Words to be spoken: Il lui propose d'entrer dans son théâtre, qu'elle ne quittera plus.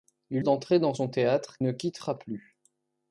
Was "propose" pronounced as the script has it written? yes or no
no